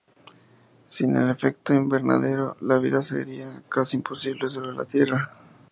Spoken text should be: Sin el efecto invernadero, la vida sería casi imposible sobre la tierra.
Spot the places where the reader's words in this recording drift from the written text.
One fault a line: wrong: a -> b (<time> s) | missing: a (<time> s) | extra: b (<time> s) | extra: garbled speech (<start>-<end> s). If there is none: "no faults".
no faults